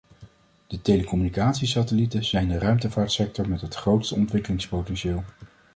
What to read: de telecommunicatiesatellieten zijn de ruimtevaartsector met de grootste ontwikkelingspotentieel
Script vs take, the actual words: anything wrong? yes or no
yes